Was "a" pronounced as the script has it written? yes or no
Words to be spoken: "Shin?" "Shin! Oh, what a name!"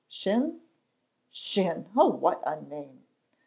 yes